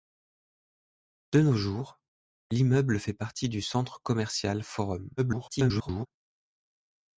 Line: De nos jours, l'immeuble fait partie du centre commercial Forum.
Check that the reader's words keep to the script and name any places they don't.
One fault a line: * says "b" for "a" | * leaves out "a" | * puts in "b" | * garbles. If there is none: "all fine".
* garbles